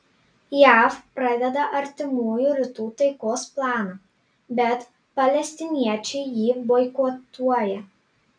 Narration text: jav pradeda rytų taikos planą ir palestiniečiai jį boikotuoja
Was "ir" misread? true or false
true